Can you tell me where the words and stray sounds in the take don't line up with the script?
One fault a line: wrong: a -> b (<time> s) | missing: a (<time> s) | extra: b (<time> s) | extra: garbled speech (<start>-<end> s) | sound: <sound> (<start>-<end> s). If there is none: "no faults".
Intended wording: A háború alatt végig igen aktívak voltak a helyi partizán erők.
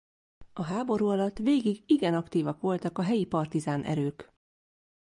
no faults